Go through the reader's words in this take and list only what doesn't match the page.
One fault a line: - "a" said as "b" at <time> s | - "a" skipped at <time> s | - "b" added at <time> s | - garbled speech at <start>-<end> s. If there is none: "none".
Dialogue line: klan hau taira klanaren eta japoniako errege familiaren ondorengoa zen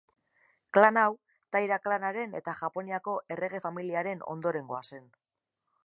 none